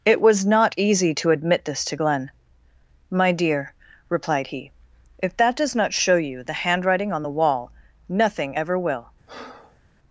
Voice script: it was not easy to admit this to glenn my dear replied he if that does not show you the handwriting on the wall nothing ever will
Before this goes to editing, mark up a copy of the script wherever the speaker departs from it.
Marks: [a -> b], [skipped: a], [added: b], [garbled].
it was not easy to admit this to glenn my dear replied he if that does not show you the handwriting on the wall nothing ever will